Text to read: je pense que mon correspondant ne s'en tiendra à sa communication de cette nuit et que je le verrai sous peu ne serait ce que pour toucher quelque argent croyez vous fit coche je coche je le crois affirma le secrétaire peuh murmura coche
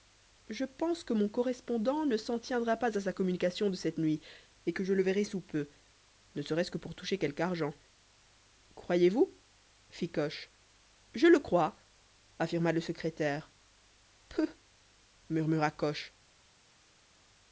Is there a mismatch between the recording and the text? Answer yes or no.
yes